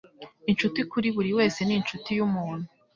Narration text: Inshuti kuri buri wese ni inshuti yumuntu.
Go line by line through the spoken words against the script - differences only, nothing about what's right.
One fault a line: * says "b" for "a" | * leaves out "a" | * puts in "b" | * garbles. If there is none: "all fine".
all fine